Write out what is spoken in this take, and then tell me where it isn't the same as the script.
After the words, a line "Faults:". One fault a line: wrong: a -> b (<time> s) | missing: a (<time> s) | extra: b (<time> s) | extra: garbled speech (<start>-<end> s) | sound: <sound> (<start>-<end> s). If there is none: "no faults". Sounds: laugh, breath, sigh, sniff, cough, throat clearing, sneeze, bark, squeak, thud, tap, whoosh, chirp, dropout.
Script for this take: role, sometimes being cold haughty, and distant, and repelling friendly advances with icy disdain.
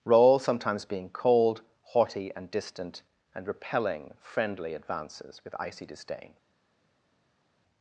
role, sometimes being cold haughty, and distant, and repelling friendly advances with icy disdain.
Faults:
no faults